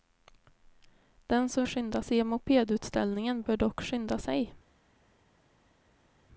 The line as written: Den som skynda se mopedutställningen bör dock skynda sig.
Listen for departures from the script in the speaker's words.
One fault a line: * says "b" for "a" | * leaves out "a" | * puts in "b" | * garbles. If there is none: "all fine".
all fine